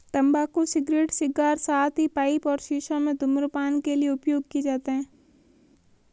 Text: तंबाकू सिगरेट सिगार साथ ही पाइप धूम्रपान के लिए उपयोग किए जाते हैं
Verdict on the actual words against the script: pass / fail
fail